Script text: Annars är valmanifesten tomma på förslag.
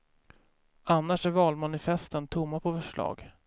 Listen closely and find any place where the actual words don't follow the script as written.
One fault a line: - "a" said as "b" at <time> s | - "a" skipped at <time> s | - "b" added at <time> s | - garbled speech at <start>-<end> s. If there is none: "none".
none